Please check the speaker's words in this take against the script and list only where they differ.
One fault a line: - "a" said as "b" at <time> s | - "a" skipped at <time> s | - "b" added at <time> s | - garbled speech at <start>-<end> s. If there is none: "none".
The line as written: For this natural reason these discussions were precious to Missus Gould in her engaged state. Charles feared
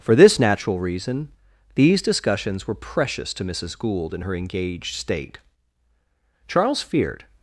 none